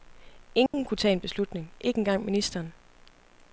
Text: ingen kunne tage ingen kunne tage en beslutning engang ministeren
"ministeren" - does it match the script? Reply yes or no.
yes